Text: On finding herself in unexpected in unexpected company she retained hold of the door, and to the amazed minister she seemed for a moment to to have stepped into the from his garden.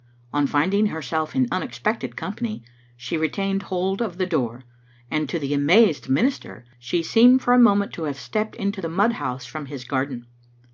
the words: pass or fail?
fail